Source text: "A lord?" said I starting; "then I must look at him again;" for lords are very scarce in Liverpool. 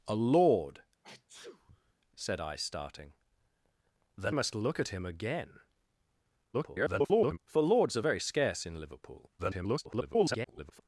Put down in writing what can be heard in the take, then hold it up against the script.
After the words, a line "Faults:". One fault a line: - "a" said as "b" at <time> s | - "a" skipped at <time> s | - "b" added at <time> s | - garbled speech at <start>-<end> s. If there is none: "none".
"A lord?" said I starting; "then must look at him again;" [garbled] for lords are very scarce in Liverpool. [garbled]
Faults:
- "I" skipped at 4.3 s
- garbled speech at 6.5-7.4 s
- garbled speech at 9.4-10.8 s